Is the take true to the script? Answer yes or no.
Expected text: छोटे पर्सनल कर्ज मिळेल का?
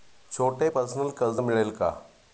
yes